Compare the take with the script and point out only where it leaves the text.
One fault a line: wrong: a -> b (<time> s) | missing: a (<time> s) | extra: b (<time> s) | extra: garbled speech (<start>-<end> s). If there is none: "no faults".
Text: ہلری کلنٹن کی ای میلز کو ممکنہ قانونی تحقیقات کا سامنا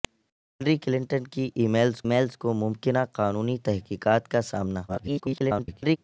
extra: میلز (2.0 s)
extra: garbled speech (4.9-6.0 s)